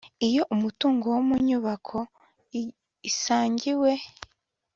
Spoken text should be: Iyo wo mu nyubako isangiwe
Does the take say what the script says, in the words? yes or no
no